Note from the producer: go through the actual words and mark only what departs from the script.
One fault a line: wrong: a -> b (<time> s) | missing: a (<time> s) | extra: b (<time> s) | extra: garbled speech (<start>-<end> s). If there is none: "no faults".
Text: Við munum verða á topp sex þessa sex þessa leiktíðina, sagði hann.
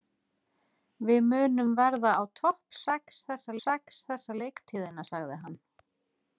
no faults